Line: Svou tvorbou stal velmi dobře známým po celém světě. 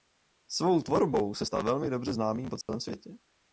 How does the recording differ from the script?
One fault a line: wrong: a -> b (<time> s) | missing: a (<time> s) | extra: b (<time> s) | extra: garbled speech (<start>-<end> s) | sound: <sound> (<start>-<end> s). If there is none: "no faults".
extra: se (1.3 s)
sound: dropout (2.6-2.7 s)